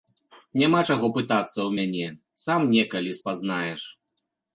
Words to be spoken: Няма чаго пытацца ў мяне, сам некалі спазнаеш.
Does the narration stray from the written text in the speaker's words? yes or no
no